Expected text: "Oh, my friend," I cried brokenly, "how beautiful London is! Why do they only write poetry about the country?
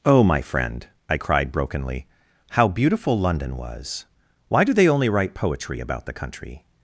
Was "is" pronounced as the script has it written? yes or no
no